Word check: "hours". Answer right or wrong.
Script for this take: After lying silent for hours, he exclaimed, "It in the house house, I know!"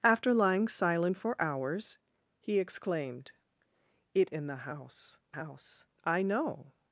right